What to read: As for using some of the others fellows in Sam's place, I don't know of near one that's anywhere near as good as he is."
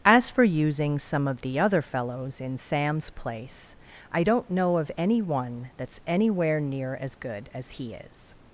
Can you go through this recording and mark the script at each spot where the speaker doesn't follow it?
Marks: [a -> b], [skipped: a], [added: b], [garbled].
As for using some of the [others -> other] fellows in Sam's place, I don't know of [near -> any] one that's anywhere near as good as he is."